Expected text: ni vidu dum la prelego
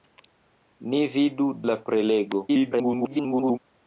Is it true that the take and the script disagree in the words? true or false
true